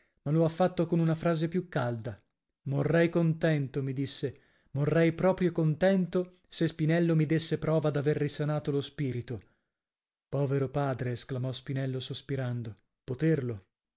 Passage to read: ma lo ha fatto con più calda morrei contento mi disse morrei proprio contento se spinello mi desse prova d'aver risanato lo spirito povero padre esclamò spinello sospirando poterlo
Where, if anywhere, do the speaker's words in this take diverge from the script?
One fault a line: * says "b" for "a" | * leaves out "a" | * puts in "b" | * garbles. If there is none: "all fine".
* puts in "una frase"